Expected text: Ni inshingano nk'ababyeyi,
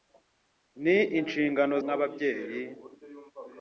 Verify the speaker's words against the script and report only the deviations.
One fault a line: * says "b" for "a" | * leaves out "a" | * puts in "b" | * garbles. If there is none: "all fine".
all fine